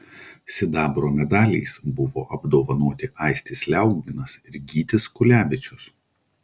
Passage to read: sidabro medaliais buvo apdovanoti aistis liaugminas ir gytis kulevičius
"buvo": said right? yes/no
yes